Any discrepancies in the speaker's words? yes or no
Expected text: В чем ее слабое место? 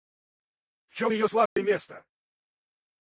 no